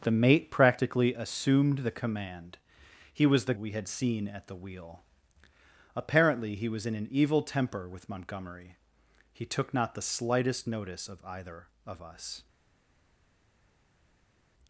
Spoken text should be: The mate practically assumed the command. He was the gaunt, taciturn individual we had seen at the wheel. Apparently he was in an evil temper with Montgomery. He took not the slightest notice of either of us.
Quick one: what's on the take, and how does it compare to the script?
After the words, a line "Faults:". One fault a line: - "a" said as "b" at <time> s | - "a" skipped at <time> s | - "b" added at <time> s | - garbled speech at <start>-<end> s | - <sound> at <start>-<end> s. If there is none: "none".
The mate practically assumed the command. He was the we had seen at the wheel. Apparently he was in an evil temper with Montgomery. He took not the slightest notice of either of us.
Faults:
- "gaunt taciturn individual" skipped at 3.5 s